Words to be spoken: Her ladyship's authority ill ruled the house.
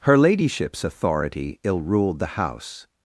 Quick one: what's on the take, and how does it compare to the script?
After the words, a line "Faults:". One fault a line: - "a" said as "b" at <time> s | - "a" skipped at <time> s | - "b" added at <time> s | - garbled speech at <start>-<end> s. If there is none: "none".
Her ladyship's authority ill ruled the house.
Faults:
none